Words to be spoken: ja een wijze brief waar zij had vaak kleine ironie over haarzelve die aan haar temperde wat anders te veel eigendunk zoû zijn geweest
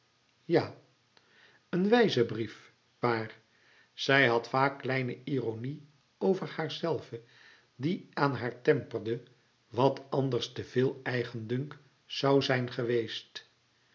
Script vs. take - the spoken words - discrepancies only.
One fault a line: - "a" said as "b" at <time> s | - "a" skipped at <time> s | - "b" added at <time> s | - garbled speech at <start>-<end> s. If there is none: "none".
none